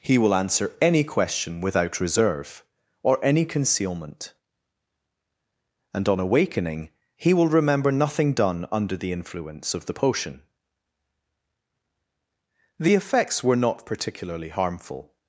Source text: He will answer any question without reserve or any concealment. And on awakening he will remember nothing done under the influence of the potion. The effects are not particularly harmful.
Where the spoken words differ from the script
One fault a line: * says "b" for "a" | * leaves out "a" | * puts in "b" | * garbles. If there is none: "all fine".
* says "were" for "are"